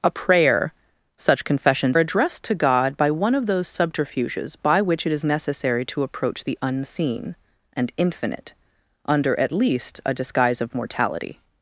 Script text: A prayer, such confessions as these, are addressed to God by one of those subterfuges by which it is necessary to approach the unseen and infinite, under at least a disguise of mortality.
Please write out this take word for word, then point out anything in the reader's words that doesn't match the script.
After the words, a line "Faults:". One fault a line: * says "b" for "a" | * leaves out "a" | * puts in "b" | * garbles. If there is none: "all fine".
A prayer, such confessions addressed to God by one of those subterfuges by which it is necessary to approach the unseen and infinite, under at least a disguise of mortality.
Faults:
* leaves out "as these are"